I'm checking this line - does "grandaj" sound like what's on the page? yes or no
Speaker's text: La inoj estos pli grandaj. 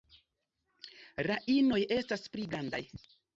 yes